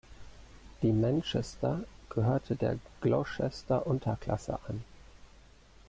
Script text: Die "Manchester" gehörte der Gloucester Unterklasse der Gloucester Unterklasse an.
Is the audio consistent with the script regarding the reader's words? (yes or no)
no